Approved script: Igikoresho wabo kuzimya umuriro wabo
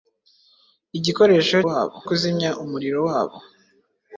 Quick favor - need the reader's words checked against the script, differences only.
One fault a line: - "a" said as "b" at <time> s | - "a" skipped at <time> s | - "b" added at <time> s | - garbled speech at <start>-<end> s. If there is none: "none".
none